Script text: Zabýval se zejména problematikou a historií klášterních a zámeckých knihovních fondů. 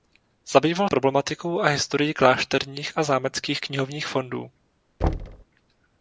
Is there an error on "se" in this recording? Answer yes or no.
yes